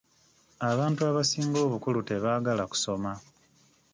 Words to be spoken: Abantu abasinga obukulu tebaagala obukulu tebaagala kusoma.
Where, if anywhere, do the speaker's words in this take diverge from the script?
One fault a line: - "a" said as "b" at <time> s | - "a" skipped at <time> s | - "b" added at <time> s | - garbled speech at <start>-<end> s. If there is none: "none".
- "obukulu tebaagala" skipped at 2.6 s